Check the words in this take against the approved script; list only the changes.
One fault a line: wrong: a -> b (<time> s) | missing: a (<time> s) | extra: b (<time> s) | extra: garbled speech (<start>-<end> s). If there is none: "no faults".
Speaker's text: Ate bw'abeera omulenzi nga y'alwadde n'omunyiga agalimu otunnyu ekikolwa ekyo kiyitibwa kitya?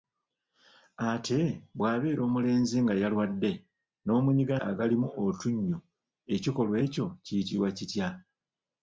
no faults